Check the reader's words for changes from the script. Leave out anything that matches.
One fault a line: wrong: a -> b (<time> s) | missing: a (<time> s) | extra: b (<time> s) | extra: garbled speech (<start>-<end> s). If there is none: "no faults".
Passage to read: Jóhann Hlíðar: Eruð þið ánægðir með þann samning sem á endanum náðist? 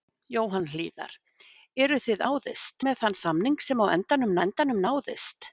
wrong: ánægðir -> náðist (2.3 s)
extra: endanum (4.5 s)